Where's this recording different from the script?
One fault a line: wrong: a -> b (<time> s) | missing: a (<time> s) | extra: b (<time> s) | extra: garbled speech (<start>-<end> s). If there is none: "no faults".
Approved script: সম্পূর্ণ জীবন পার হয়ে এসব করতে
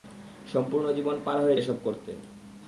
no faults